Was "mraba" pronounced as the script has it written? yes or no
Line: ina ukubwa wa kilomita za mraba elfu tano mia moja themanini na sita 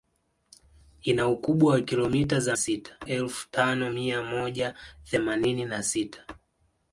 no